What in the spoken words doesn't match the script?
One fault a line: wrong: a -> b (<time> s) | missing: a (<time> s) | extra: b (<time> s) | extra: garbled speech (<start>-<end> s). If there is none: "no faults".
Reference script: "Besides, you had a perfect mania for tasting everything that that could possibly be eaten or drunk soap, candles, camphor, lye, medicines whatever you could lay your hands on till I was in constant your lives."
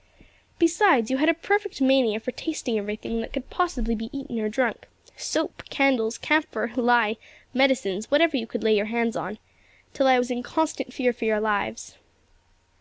missing: that (3.3 s)
extra: fear for (10.9 s)